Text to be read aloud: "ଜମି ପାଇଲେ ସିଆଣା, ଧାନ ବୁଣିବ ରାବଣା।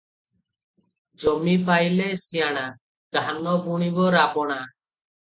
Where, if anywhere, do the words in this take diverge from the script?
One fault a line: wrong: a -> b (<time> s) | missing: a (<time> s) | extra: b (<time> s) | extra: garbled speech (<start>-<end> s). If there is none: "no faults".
no faults